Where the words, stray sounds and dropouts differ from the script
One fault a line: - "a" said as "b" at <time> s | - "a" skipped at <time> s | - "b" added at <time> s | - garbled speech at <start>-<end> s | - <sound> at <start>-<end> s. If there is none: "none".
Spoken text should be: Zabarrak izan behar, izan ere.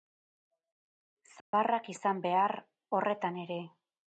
- dropout at 1.4-1.5 s
- "izan" said as "horretan" at 3.0 s